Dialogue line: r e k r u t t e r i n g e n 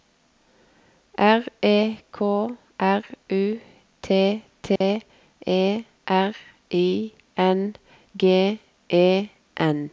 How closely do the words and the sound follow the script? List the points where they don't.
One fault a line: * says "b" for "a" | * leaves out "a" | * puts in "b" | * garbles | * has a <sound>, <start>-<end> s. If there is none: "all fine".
* has a dropout, 4.8-4.8 s